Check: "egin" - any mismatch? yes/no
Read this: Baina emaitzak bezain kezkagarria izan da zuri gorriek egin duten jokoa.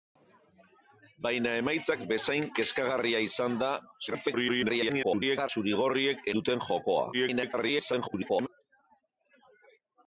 yes